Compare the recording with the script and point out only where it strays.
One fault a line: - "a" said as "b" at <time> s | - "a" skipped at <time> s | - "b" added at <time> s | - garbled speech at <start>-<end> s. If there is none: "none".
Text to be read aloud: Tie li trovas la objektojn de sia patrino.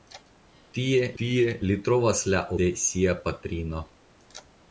- "tie" added at 1.2 s
- "objektojn" skipped at 2.4 s